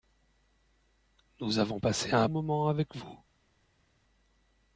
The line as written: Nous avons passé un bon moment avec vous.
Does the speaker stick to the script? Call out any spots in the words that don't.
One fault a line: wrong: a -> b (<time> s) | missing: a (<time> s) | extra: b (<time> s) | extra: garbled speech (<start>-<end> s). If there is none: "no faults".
missing: bon (2.3 s)